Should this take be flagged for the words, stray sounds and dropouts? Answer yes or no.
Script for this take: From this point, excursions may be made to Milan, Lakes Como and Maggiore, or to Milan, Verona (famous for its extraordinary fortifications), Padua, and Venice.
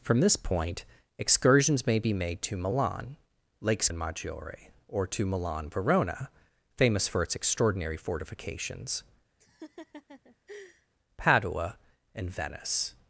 yes